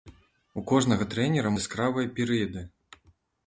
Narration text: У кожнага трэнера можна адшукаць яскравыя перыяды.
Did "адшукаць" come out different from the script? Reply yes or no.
yes